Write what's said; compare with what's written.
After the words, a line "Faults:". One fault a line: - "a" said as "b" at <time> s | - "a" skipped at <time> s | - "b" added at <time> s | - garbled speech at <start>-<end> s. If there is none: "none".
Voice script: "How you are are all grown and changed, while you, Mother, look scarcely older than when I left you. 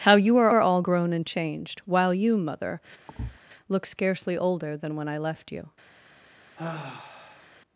"How you are are all grown and changed, while you, Mother, look scarcely older than when I left you.
Faults:
none